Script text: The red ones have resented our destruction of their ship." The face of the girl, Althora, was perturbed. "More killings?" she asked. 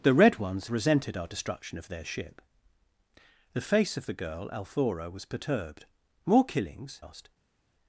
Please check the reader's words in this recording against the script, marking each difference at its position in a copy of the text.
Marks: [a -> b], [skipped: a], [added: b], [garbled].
The red ones [skipped: have] resented our destruction of their ship." The face of the girl, Althora, was perturbed. "More killings?" [skipped: she] asked.